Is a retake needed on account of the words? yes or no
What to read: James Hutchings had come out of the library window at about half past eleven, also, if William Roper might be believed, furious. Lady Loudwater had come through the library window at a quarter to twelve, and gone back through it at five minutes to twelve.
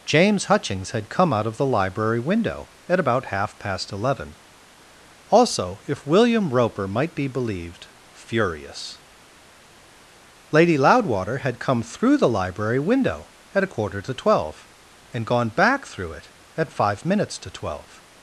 no